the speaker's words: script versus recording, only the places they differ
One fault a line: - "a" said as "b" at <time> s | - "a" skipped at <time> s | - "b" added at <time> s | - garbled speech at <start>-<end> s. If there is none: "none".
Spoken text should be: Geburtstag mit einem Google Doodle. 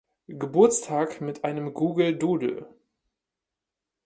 none